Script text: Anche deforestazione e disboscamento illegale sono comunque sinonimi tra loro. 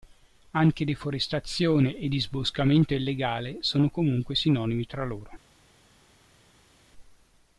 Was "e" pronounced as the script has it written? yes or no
yes